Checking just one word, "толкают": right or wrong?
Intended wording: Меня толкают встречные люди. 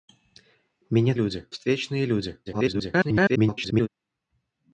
wrong